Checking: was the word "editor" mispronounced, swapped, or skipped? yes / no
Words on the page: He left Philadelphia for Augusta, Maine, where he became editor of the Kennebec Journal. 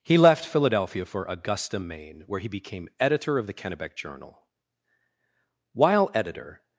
no